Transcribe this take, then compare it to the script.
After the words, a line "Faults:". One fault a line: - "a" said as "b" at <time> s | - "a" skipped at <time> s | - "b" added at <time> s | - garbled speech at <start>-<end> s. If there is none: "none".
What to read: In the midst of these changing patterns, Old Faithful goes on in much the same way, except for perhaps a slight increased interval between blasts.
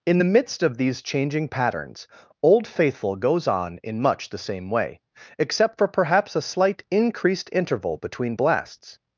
In the midst of these changing patterns, Old Faithful goes on in much the same way, except for perhaps a slight increased interval between blasts.
Faults:
none